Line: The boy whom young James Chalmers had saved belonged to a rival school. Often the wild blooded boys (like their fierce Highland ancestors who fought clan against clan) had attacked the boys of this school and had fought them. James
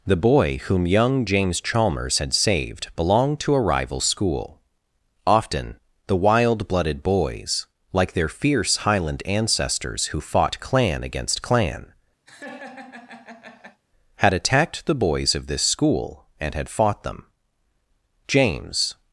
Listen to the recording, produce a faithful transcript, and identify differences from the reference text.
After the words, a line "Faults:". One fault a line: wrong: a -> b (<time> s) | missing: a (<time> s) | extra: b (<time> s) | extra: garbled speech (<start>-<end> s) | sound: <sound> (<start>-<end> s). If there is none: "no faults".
The boy whom young James Chalmers had saved belonged to a rival school. Often the wild blooded boys (like their fierce Highland ancestors who fought clan against clan) had attacked the boys of this school and had fought them. James
Faults:
sound: laugh (12.3-13.8 s)